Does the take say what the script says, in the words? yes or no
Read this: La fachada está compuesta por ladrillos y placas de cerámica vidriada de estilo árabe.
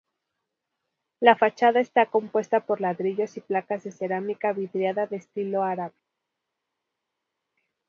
yes